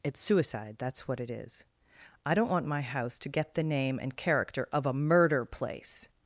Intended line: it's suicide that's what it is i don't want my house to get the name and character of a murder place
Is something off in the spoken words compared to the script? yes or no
no